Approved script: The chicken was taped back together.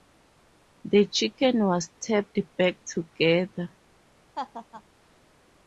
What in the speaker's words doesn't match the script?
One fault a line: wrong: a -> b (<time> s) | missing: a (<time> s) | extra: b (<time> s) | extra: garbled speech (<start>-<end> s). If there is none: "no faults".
no faults